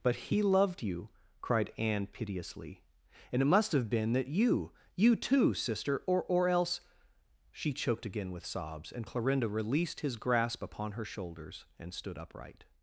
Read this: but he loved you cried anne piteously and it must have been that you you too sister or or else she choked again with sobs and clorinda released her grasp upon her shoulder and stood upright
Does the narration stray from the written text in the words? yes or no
yes